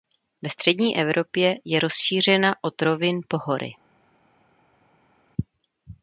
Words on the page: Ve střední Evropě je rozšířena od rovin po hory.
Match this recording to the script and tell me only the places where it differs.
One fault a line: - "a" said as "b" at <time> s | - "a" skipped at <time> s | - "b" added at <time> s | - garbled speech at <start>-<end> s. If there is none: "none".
none